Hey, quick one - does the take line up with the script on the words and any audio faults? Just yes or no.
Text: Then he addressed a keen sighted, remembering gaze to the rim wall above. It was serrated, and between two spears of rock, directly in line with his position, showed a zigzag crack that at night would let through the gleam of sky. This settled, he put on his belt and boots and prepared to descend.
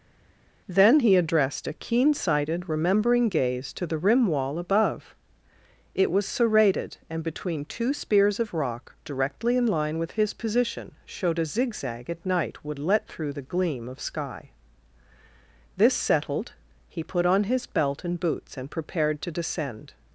no